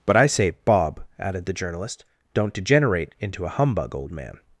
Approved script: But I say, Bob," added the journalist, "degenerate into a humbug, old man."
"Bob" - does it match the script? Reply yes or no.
yes